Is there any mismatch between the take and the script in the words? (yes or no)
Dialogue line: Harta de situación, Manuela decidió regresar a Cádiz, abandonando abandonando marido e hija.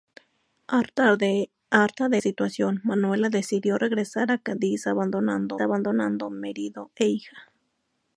no